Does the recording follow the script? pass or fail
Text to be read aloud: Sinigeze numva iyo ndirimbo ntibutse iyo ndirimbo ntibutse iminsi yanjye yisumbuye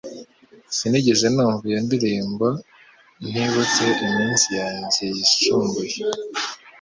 fail